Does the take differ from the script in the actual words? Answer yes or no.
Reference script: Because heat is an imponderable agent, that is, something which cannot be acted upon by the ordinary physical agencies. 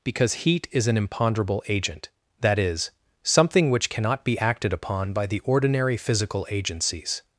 no